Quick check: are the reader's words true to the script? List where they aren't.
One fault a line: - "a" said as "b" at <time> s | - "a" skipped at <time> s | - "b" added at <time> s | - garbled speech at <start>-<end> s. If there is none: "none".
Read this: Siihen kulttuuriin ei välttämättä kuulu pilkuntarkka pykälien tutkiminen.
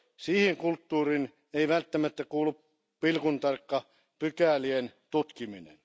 none